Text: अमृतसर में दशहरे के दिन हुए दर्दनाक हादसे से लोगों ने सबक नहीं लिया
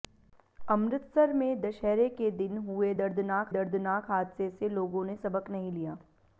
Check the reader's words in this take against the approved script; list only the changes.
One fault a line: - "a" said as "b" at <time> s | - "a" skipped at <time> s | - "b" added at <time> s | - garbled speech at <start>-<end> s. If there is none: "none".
- "दर्दनाक" added at 3.5 s